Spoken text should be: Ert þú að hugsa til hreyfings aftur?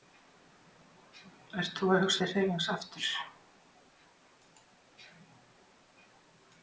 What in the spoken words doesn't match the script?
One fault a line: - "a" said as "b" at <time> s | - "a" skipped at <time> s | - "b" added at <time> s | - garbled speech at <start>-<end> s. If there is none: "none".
none